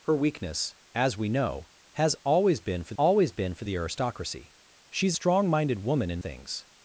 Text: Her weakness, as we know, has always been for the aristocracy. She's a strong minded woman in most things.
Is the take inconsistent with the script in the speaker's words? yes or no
yes